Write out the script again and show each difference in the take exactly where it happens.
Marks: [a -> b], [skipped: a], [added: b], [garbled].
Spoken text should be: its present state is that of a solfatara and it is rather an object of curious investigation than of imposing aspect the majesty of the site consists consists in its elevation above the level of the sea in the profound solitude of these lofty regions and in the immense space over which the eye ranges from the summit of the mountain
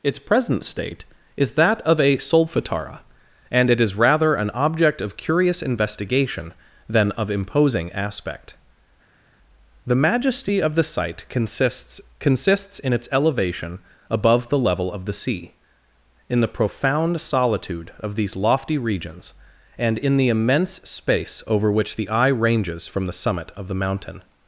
its present state is that of a solfatara and it is rather an object of curious investigation than of imposing aspect the majesty of the site consists consists in its elevation above the level of the sea in the profound solitude of these lofty regions and in the immense space over which the eye ranges from the summit of the mountain